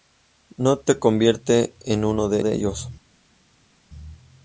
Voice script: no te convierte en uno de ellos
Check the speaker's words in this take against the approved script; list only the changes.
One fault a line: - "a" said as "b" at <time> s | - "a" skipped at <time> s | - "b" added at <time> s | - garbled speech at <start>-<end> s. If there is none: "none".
- "de" added at 2.4 s